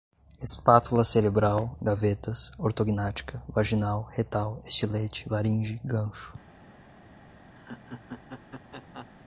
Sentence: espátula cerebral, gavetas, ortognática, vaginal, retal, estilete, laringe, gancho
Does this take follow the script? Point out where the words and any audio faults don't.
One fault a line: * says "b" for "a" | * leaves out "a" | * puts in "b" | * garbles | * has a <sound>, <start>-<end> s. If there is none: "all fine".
* has a laugh, 7.6-9.1 s